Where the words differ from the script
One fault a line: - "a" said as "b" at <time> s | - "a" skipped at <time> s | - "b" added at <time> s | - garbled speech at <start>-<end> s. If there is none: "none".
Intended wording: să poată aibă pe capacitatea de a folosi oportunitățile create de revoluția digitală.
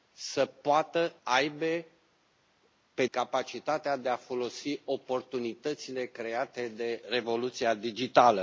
none